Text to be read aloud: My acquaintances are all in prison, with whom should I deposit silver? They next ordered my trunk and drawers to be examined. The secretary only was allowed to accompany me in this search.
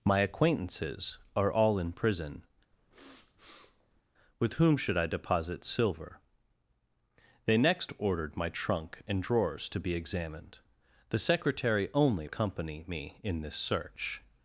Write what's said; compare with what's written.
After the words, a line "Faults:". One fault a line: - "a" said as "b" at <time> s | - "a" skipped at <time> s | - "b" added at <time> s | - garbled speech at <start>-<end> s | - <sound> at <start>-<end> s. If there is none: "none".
My acquaintances are all in prison, with whom should I deposit silver? They next ordered my trunk and drawers to be examined. The secretary only accompany me in this search.
Faults:
- sniff at 2.7-4.0 s
- "was allowed to" skipped at 12.3 s